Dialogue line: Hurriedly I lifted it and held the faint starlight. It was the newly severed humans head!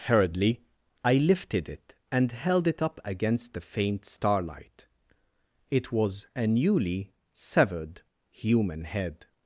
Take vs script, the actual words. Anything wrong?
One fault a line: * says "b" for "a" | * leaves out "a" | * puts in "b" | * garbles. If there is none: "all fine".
* puts in "it up against"
* says "a" for "the"
* says "human" for "humans"